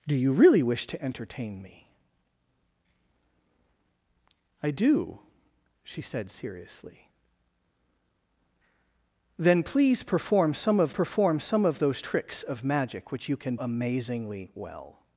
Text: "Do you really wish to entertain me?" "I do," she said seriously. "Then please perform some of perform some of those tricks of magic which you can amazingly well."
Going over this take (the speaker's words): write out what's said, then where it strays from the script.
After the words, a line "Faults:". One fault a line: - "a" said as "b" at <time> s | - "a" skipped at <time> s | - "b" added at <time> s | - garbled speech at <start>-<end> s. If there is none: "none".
"Do you really wish to entertain me?" "I do," she said seriously. "Then please perform some of perform some of those tricks of magic which you can amazingly well."
Faults:
none